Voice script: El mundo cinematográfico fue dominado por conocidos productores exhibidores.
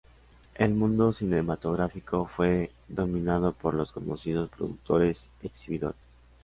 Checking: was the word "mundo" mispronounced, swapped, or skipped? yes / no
no